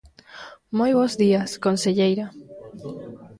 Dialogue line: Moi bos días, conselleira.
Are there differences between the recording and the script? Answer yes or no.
no